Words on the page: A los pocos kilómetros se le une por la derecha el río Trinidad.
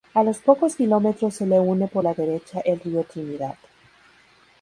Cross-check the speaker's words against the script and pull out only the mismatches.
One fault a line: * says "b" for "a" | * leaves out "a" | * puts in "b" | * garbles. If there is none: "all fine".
all fine